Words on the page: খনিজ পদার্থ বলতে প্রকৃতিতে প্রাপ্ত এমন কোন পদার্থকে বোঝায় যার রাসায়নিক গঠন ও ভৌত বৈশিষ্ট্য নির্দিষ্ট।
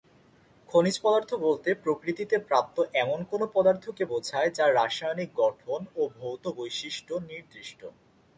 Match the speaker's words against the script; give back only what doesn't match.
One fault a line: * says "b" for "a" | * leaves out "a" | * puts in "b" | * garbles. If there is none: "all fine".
all fine